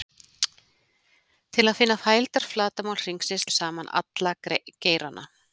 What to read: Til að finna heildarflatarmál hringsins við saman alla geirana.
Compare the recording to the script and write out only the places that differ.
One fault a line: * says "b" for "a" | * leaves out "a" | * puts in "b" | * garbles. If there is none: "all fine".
all fine